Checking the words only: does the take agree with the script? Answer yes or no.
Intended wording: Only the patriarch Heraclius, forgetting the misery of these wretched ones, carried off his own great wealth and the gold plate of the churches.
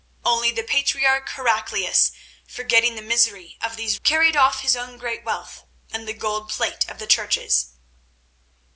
no